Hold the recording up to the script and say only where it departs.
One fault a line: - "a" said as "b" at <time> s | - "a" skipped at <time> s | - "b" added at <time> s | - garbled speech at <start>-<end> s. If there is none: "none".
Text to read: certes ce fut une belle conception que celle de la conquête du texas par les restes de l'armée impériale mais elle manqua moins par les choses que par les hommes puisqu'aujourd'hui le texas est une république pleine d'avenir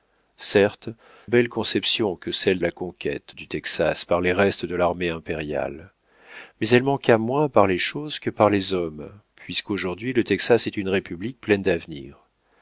- "ce fut une" skipped at 0.9 s
- "de" skipped at 2.6 s